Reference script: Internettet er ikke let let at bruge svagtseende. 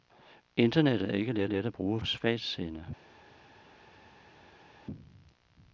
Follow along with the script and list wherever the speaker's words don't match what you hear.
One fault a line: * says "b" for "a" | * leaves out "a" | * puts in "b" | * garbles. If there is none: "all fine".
all fine